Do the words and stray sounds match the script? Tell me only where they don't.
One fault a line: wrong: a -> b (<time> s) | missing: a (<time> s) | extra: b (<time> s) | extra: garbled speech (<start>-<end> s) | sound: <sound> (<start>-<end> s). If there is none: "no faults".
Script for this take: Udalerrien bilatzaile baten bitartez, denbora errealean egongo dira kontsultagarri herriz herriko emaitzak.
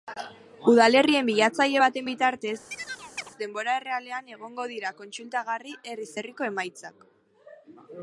sound: chirp (2.7-3.3 s)